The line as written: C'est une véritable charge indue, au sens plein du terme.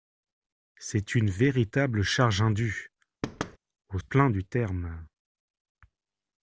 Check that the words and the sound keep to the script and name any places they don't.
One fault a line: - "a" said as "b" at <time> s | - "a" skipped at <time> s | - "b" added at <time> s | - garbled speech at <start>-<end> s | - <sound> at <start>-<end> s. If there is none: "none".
- thud at 3.2-3.6 s
- "sens" skipped at 4.0 s